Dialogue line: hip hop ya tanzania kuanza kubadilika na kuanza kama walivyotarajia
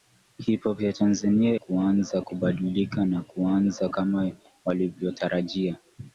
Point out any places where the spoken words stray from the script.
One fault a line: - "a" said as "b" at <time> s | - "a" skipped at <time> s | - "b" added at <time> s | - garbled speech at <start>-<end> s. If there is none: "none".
none